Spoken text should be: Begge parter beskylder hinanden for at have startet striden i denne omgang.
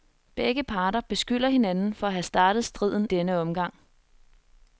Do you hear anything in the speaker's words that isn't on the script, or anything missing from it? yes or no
yes